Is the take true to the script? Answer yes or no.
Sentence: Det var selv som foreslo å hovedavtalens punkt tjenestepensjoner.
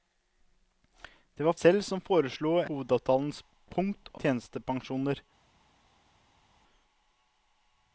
yes